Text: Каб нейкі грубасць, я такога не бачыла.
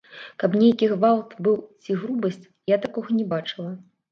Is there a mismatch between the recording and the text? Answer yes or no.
yes